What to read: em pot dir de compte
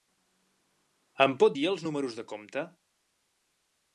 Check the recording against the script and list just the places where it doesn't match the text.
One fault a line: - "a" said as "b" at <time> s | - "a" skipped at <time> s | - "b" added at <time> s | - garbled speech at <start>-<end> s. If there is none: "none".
- "els números" added at 1.7 s